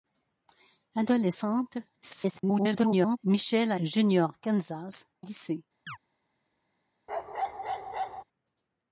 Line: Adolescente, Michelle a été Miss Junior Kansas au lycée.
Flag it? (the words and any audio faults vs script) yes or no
yes